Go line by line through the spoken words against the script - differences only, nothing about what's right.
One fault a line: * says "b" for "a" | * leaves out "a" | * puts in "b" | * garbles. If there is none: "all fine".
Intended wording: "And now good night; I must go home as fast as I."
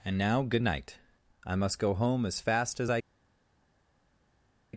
all fine